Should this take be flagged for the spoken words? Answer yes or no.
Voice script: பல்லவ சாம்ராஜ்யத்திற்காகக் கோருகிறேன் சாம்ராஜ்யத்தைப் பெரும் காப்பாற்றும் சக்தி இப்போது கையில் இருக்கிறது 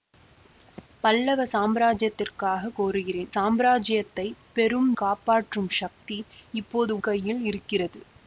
no